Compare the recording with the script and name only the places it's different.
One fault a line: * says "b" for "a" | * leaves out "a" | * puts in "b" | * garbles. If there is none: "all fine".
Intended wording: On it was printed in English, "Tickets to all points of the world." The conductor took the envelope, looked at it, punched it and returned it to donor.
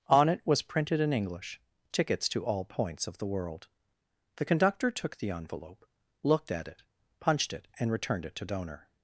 all fine